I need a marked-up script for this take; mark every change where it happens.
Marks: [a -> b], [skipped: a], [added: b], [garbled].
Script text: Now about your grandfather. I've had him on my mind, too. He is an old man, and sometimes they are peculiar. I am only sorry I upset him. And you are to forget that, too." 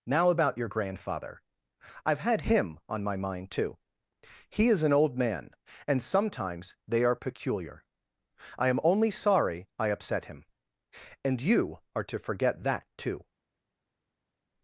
Now about your grandfather. I've had him on my mind, too. He is an old man, and sometimes they are peculiar. I am only sorry I upset him. And you are to forget that, too."